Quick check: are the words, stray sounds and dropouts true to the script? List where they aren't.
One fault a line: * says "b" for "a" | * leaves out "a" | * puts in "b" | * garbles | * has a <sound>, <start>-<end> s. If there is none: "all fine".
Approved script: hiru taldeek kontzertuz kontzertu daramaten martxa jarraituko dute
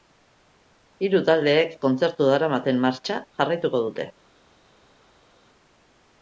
* leaves out "kontzertuz"